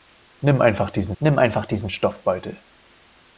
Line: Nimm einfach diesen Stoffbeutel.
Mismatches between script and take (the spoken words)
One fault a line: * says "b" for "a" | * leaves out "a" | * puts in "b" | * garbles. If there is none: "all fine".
* puts in "nimm einfach diesen"